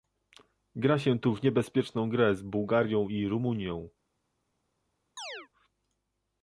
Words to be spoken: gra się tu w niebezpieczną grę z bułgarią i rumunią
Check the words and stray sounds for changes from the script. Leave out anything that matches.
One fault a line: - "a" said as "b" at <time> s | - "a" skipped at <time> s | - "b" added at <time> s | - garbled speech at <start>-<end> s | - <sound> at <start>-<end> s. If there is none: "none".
- chirp at 5.2-5.5 s